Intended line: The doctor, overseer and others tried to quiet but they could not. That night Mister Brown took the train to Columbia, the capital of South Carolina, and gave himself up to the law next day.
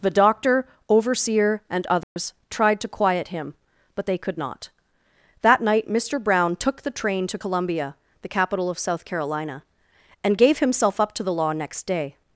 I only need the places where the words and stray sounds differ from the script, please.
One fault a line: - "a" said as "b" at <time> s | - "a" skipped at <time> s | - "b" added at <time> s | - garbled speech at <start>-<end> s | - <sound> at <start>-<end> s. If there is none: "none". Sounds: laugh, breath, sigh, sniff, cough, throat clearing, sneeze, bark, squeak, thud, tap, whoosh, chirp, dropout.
- dropout at 2.0-2.2 s
- "him" added at 3.3 s